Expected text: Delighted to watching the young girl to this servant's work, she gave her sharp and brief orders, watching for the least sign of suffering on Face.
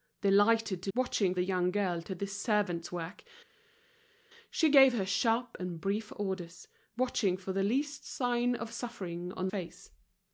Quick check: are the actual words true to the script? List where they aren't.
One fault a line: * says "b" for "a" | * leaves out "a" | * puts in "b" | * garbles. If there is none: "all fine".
all fine